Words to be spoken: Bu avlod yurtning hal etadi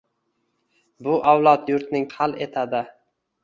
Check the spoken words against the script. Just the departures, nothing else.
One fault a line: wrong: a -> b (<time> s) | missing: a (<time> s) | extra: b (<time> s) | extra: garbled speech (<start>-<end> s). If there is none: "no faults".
no faults